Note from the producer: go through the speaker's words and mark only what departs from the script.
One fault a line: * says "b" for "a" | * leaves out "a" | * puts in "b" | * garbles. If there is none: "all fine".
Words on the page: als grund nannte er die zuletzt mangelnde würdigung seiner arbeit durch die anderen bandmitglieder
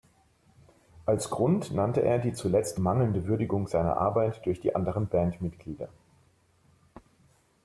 all fine